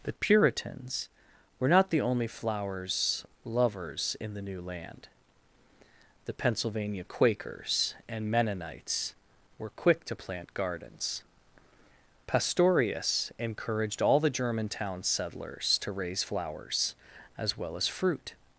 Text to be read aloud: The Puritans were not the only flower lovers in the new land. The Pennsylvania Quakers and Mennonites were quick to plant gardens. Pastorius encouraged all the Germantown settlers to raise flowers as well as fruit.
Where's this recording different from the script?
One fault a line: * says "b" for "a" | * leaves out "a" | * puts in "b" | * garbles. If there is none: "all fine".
* says "flowers" for "flower"